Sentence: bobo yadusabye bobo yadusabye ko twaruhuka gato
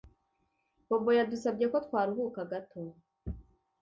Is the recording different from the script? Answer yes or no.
yes